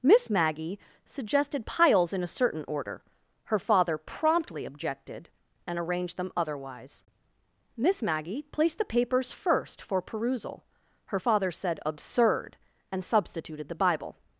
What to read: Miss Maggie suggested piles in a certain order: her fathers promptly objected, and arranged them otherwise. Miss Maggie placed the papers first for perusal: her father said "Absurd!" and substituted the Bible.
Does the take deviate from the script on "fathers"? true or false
true